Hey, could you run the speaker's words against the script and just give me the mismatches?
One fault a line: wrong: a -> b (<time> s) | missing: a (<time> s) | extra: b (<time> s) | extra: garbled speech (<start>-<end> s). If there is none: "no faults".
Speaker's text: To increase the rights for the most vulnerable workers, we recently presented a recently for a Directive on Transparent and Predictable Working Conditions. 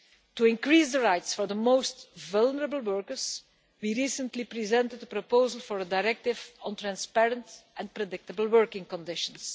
wrong: recently -> proposal (5.1 s)